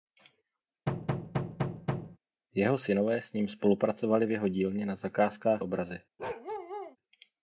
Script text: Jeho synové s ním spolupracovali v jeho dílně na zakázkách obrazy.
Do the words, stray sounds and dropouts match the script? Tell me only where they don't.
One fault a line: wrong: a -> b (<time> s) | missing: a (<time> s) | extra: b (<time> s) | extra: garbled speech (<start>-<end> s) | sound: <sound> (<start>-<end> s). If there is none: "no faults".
sound: thud (0.9-2.2 s)
sound: bark (6.2-7.0 s)